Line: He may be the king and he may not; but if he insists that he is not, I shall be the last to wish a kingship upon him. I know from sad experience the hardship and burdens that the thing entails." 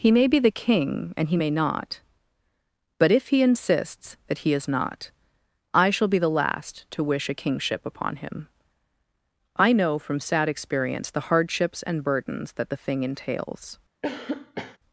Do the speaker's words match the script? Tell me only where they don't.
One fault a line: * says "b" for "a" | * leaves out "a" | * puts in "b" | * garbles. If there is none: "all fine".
* says "hardships" for "hardship"